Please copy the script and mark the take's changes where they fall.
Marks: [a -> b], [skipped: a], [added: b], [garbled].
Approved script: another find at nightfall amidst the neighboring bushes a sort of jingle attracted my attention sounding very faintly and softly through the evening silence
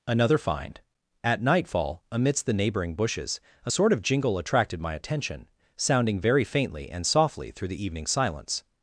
another find at nightfall amidst the neighboring bushes a sort of jingle attracted my attention sounding very faintly and softly through the evening silence